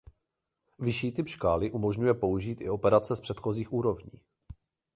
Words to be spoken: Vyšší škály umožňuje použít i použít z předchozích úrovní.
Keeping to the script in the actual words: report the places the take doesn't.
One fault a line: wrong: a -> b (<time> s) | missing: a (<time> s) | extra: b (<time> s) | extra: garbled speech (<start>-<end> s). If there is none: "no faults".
extra: typ (1.1 s)
wrong: použít -> operace (2.7 s)